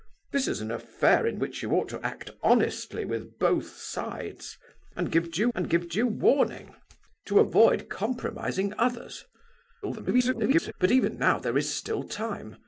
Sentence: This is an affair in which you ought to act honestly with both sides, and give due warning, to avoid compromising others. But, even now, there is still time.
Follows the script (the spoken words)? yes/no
no